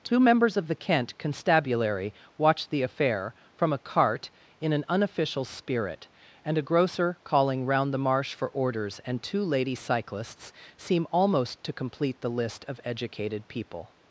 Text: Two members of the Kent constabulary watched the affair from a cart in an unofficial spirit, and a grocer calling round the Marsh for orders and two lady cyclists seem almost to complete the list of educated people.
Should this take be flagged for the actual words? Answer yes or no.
no